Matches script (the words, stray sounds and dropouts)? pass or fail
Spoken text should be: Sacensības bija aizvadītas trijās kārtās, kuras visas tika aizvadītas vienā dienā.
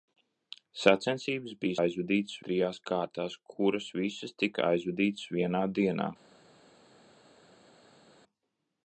pass